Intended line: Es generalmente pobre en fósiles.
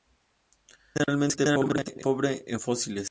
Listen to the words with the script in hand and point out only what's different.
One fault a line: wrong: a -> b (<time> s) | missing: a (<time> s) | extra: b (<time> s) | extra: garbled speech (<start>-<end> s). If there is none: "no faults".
no faults